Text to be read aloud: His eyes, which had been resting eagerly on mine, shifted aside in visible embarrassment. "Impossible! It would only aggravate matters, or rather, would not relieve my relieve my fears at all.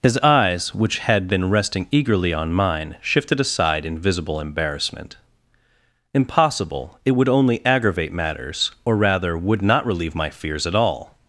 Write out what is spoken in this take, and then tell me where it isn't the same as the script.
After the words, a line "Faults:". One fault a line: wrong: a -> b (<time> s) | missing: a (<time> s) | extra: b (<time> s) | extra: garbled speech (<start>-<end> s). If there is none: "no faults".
His eyes, which had been resting eagerly on mine, shifted aside in visible embarrassment. "Impossible! It would only aggravate matters, or rather, would not relieve my fears at all.
Faults:
missing: relieve my (10.3 s)